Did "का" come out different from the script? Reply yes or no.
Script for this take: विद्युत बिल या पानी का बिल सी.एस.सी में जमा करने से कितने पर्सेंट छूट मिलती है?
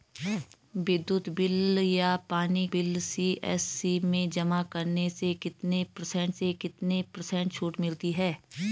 yes